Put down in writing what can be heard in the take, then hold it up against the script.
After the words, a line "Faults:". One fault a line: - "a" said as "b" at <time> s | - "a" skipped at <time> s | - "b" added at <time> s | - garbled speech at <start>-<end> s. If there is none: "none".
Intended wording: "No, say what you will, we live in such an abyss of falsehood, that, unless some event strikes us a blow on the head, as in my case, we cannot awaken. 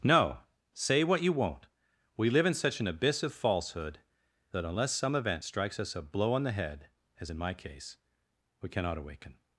"No, say what you won't, we live in such an abyss of falsehood, that, unless some event strikes us a blow on the head, as in my case, we cannot awaken.
Faults:
- "will" said as "won't" at 1.3 s